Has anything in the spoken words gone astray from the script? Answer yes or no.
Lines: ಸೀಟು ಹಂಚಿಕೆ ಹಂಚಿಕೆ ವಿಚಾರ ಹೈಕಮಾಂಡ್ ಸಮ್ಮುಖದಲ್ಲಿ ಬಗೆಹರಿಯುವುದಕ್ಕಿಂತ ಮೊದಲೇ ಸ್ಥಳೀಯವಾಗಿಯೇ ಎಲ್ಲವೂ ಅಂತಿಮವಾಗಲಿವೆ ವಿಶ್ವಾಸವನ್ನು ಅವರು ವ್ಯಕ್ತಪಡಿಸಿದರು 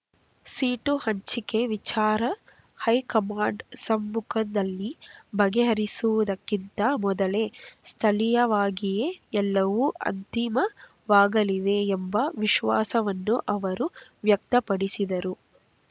yes